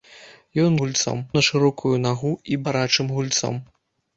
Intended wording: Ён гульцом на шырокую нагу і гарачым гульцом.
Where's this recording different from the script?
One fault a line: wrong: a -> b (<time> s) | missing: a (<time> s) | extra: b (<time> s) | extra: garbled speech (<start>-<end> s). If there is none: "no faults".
no faults